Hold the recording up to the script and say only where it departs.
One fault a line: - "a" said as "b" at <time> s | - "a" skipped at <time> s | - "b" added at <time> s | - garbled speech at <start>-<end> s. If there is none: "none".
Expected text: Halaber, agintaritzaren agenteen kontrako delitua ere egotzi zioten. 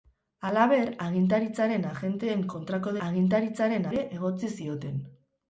- "delitua" said as "agintaritzaren" at 3.1 s